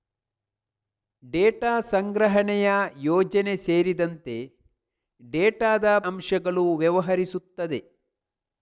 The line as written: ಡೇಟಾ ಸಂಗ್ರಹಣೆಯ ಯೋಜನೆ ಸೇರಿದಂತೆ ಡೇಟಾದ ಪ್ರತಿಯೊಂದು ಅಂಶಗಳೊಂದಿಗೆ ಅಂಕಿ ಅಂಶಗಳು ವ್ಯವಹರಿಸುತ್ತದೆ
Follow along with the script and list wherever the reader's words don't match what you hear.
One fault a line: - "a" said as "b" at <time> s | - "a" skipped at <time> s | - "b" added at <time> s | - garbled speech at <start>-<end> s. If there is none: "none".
- "ಪ್ರತಿಯೊಂದು ಅಂಶಗಳೊಂದಿಗೆ ಅಂಕಿ" skipped at 5.8 s